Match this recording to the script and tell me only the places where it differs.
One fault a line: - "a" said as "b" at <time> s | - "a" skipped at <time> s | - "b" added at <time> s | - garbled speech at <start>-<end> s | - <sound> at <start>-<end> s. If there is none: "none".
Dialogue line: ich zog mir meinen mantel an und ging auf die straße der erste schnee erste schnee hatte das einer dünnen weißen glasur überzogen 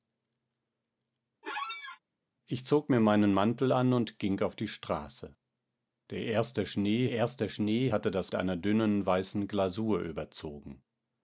- squeak at 1.4-2.0 s